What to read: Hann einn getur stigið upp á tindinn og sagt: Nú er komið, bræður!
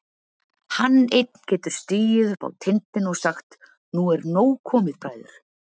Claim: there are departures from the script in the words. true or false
true